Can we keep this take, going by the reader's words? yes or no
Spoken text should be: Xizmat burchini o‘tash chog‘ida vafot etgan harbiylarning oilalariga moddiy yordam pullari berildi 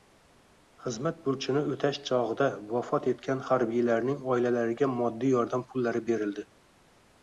yes